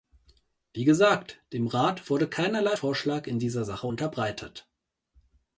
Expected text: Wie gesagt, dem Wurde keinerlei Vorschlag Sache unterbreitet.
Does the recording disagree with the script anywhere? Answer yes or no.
yes